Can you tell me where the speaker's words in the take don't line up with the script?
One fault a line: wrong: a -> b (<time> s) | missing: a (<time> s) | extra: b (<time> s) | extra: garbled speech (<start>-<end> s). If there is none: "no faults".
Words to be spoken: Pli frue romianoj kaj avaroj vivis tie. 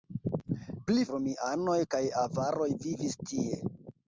missing: frue (1.0 s)